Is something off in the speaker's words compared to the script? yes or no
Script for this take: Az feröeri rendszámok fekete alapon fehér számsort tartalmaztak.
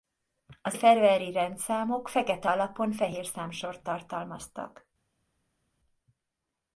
no